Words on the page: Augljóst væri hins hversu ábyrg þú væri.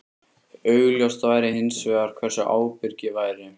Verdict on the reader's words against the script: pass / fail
fail